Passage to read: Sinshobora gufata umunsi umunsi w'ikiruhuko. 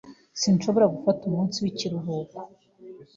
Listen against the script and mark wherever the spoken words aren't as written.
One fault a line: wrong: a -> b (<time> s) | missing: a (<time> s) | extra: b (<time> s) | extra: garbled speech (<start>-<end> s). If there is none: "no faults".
missing: umunsi (1.6 s)